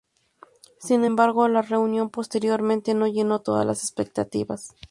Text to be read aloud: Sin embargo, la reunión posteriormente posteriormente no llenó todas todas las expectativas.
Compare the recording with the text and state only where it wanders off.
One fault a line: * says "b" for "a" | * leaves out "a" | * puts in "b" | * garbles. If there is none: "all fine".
* leaves out "posteriormente"
* leaves out "todas"